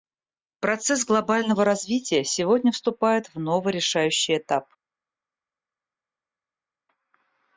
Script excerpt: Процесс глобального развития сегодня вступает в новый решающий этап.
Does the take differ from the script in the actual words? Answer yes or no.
no